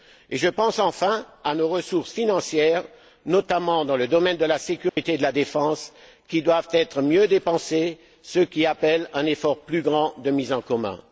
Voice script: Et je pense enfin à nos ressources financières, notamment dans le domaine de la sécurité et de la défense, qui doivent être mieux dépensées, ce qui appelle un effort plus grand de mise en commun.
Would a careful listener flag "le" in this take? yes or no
no